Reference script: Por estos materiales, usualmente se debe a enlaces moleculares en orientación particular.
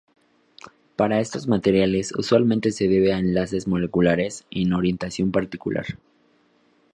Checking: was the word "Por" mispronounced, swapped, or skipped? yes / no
yes